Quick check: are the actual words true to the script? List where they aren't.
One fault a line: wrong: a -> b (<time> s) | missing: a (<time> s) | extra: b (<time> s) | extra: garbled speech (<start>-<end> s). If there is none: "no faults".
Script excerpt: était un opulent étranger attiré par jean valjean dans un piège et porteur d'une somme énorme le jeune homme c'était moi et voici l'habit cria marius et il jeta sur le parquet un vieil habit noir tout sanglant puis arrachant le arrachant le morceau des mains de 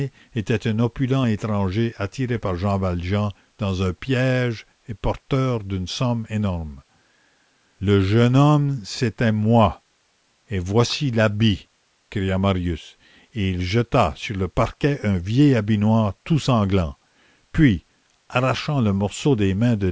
missing: arrachant le (18.9 s)